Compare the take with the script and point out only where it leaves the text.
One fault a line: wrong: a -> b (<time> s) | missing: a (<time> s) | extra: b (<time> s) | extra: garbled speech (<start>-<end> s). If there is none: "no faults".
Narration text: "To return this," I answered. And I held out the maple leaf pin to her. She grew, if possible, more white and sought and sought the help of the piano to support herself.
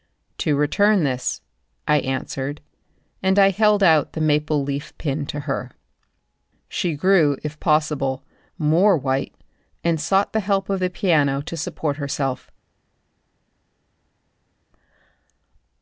missing: and sought (10.3 s)